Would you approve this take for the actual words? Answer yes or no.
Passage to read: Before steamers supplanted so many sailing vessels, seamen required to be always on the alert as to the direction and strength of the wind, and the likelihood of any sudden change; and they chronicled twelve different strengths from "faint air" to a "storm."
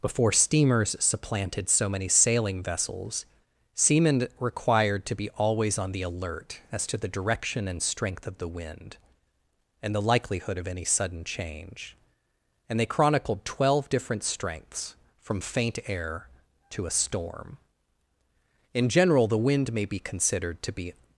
no